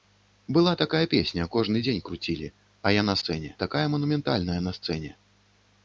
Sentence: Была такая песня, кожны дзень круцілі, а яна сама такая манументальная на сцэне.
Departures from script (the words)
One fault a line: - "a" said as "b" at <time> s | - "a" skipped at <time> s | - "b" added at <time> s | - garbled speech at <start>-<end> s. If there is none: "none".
- "сама" said as "сцэне" at 3.2 s